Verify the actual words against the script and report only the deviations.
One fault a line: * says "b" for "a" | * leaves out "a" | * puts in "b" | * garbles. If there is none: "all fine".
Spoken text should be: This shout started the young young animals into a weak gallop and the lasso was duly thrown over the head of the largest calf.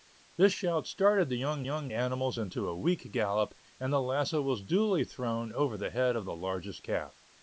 all fine